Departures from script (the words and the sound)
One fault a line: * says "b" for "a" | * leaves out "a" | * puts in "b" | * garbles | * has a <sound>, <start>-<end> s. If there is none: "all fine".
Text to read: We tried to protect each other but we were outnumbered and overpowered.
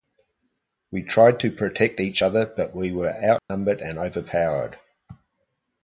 * has a dropout, 3.4-3.5 s